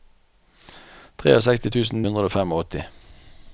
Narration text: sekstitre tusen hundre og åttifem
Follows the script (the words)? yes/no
yes